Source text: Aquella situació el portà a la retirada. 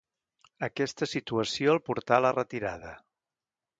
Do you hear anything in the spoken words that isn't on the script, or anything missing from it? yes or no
yes